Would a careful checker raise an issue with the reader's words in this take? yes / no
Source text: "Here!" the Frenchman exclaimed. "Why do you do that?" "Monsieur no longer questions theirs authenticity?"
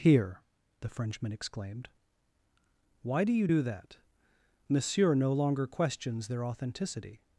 yes